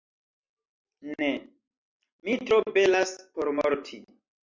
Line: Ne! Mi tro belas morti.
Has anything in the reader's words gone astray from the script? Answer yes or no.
yes